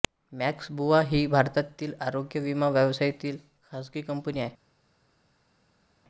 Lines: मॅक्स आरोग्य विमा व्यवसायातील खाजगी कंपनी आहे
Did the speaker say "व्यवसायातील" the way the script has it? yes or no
yes